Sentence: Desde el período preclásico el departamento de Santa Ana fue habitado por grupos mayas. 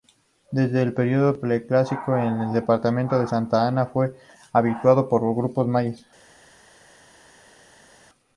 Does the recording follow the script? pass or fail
pass